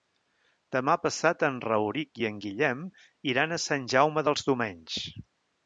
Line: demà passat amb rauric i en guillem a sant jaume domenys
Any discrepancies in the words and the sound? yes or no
yes